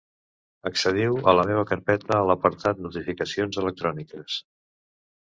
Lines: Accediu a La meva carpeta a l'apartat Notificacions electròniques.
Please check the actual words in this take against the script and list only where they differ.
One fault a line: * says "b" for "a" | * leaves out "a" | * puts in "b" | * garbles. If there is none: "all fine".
all fine